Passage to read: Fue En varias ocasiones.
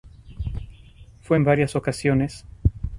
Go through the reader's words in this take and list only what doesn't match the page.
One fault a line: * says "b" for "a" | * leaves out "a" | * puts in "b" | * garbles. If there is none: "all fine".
all fine